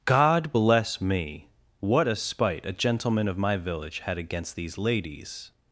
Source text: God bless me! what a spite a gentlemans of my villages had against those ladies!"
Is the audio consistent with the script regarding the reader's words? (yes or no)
no